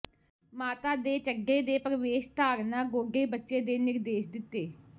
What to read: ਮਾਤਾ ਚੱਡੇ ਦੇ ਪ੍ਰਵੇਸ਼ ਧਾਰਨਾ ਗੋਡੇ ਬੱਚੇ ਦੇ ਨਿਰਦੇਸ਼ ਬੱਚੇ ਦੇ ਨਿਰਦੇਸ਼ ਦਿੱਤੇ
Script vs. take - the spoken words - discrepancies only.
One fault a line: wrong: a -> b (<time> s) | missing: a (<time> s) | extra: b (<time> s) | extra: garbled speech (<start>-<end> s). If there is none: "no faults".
extra: ਦੇ (1.0 s)
missing: ਬੱਚੇ ਦੇ ਨਿਰਦੇਸ਼ (4.3 s)